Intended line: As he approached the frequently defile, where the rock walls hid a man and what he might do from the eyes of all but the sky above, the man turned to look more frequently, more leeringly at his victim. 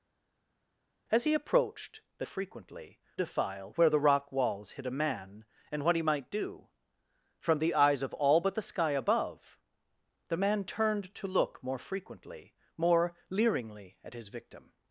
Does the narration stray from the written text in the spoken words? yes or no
no